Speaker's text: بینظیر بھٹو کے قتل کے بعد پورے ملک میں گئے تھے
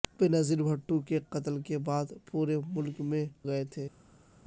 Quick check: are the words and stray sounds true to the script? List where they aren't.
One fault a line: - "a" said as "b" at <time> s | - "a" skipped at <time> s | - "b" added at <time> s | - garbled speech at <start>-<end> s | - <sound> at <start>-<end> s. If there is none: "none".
none